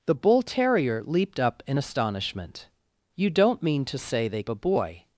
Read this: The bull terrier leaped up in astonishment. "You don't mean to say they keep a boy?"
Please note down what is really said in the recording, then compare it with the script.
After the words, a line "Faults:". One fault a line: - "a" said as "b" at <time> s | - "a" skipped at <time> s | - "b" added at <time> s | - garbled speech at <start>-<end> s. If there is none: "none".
The bull terrier leaped up in astonishment. "You don't mean to say they a boy?"
Faults:
- "keep" skipped at 4.4 s